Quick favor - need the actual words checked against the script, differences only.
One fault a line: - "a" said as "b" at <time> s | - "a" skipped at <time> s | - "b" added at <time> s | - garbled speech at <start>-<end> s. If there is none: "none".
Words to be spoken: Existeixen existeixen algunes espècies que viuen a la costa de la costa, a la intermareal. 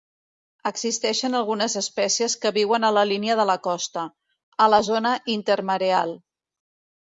- "existeixen" skipped at 1.4 s
- "costa" said as "línia" at 3.1 s
- "zona" added at 4.9 s